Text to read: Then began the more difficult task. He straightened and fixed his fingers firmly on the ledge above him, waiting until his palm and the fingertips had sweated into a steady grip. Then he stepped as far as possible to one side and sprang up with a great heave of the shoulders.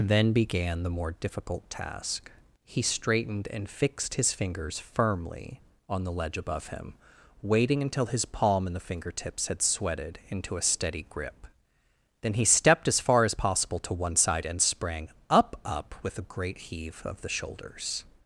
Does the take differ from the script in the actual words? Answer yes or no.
yes